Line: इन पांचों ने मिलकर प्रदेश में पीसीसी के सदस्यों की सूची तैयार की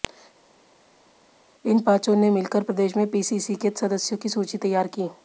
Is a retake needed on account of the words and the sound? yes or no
no